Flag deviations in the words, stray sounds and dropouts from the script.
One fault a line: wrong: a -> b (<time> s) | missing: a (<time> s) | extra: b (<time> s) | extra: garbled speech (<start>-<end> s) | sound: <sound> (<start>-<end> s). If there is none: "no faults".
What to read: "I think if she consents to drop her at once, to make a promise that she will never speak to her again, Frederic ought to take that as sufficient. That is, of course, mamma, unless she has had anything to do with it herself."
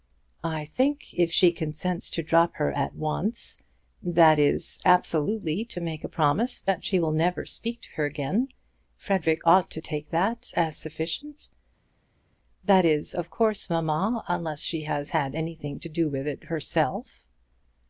extra: that is absolutely (4.0 s)